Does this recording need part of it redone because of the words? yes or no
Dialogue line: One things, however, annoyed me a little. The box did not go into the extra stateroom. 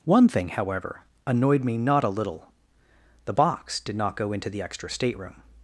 yes